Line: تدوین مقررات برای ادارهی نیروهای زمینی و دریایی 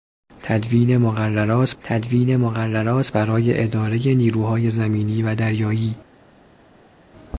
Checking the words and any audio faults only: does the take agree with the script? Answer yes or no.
no